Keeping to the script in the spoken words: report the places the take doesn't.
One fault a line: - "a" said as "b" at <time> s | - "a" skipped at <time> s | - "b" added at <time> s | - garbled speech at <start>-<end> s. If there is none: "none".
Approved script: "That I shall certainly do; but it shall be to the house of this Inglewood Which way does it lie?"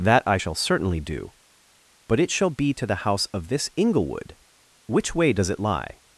none